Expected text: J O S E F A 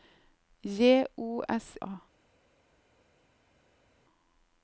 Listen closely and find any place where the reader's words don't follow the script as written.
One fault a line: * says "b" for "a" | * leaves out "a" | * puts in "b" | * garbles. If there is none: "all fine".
* leaves out "E F"